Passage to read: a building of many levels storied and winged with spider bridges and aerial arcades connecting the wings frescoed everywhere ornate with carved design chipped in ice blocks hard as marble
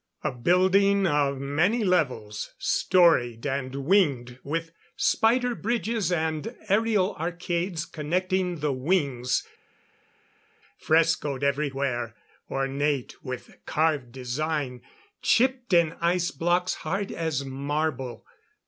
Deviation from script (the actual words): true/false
false